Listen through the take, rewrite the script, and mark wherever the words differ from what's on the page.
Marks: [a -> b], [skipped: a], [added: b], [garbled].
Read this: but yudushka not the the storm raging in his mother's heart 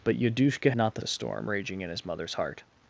but yudushka not the the storm raging in his mother's heart